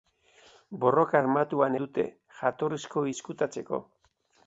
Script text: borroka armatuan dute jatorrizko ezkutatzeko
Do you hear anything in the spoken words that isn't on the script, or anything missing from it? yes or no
no